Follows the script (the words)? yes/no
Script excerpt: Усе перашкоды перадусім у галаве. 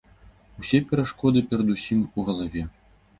yes